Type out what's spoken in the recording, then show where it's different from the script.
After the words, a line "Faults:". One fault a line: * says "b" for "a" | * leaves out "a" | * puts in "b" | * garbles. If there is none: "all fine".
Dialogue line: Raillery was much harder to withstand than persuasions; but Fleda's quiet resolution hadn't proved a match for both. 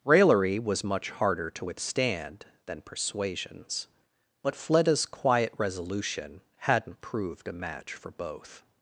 Raillery was much harder to withstand than persuasions; but Fleda's quiet resolution hadn't proved a match for both.
Faults:
all fine